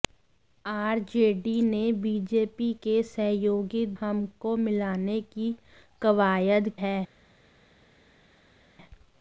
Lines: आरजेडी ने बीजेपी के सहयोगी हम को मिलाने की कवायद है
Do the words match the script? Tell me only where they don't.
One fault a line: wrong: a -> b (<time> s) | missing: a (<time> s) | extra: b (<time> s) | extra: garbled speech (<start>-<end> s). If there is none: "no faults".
no faults